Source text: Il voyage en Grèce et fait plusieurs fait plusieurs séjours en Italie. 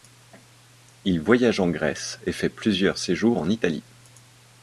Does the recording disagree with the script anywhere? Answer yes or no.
yes